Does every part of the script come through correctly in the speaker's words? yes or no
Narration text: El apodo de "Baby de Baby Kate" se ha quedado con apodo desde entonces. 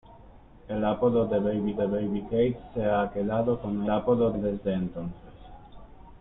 yes